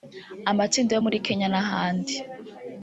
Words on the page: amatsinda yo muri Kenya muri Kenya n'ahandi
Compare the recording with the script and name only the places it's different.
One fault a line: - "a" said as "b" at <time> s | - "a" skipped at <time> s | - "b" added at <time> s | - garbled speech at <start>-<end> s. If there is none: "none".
- "muri Kenya" skipped at 1.5 s